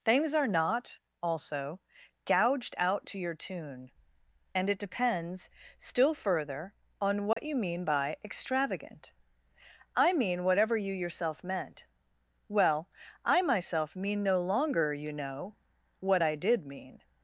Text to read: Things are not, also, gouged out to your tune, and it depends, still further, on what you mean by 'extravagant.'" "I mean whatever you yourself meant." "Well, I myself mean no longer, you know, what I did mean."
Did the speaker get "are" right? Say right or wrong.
right